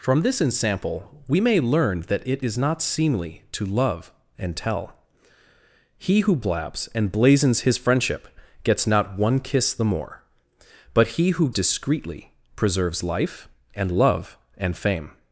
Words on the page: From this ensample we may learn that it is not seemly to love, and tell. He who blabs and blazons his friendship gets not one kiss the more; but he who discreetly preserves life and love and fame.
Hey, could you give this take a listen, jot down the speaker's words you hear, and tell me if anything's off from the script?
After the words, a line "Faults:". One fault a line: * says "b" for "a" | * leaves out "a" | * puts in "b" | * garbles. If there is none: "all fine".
From this ensample we may learn that it is not seemly to love, and tell. He who blabs and blazons his friendship gets not one kiss the more; but he who discreetly preserves life and love and fame.
Faults:
all fine